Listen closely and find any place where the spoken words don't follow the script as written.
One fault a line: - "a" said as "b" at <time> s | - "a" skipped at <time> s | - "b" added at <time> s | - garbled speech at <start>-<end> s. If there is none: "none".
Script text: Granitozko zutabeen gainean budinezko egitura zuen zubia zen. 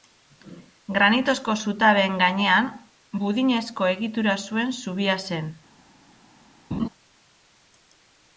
none